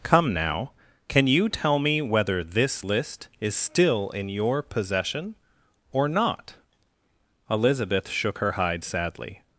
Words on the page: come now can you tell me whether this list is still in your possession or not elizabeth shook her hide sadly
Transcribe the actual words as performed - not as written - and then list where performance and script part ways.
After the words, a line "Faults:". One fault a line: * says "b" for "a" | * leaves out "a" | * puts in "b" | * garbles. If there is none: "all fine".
come now can you tell me whether this list is still in your possession or not elizabeth shook her hide sadly
Faults:
all fine